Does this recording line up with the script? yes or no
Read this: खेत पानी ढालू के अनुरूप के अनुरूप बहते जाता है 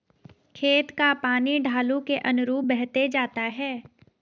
no